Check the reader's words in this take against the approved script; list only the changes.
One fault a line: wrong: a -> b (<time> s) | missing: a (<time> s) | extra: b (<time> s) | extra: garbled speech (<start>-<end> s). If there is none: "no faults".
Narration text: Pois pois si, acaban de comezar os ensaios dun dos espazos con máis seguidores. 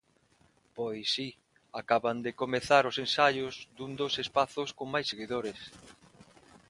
missing: pois (1.1 s)